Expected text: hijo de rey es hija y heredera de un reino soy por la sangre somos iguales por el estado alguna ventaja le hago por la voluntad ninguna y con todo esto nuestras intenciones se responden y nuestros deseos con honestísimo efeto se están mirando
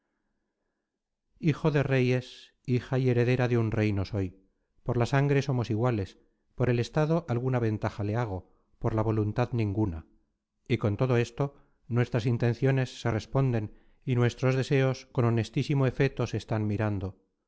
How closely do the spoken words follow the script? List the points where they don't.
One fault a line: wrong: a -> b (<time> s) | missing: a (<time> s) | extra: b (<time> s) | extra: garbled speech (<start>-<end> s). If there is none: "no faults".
no faults